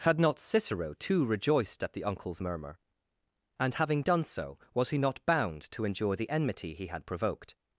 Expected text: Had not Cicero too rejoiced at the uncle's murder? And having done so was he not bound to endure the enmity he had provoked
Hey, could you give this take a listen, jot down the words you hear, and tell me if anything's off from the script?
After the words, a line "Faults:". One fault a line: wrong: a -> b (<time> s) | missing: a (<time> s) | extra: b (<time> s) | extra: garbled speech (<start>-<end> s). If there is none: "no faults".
Had not Cicero too rejoiced at the uncle's murmur? And having done so was he not bound to endure the enmity he had provoked
Faults:
wrong: murder -> murmur (2.4 s)